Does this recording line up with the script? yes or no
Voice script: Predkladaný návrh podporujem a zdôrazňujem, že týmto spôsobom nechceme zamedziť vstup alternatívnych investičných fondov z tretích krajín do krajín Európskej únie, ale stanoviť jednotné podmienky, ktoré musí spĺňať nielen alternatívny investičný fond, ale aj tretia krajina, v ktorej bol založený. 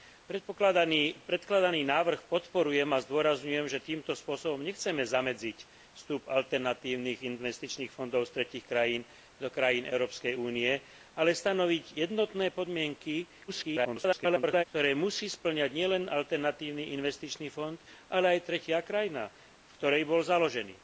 no